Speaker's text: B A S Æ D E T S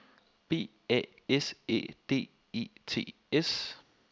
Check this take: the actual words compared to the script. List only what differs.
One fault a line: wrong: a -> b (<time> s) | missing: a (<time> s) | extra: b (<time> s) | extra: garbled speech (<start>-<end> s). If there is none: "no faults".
no faults